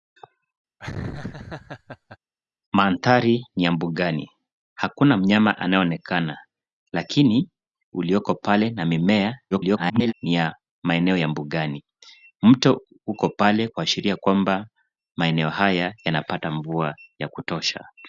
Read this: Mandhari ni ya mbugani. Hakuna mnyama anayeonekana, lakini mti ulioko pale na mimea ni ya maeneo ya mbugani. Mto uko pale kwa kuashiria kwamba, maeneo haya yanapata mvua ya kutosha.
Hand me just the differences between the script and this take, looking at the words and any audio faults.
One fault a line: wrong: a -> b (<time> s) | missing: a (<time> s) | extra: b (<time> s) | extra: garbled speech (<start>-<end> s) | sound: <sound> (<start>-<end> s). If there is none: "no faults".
sound: laugh (0.8-2.2 s)
missing: mti (7.5 s)
extra: garbled speech (9.5-10.1 s)
missing: kwa (13.7 s)